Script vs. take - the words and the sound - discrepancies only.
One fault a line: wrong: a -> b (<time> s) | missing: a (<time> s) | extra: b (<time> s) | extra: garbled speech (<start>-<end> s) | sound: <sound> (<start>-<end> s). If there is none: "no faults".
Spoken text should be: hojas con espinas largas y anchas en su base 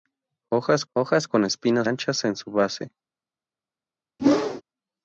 extra: hojas (0.9 s)
missing: largas y (1.9 s)
sound: whoosh (4.2-4.6 s)